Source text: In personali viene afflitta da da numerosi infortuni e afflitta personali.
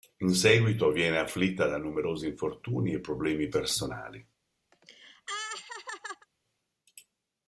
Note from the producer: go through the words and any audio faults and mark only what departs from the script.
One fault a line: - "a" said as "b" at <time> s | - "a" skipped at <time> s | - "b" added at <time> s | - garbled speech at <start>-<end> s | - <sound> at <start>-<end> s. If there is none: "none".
- "personali" said as "seguito" at 0.3 s
- "da" skipped at 1.8 s
- "afflitta" said as "problemi" at 3.0 s
- laugh at 4.7-6.3 s